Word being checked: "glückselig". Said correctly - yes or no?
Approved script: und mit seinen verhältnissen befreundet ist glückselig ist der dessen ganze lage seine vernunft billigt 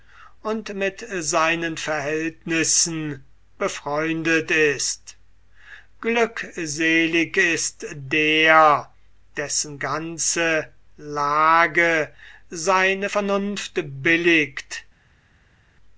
yes